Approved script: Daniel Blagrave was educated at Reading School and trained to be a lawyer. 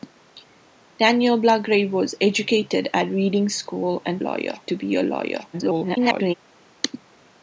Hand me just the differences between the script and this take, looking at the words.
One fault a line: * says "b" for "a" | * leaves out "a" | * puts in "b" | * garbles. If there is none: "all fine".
* says "lawyer" for "trained"
* garbles